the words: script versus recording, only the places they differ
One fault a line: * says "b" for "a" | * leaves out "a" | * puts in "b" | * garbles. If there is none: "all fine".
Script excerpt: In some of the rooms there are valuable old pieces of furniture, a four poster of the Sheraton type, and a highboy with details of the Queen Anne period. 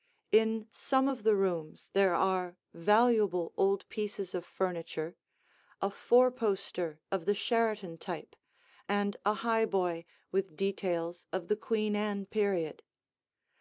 all fine